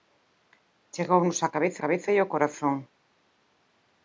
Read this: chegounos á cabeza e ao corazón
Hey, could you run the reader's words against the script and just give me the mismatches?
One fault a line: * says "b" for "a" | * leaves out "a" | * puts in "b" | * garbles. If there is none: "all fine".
* puts in "cabeza"